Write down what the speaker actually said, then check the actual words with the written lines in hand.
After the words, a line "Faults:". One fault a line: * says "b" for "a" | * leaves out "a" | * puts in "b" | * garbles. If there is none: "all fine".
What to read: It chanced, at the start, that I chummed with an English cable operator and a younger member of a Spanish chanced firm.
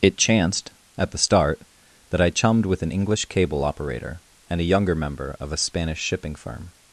It chanced, at the start, that I chummed with an English cable operator and a younger member of a Spanish shipping firm.
Faults:
* says "shipping" for "chanced"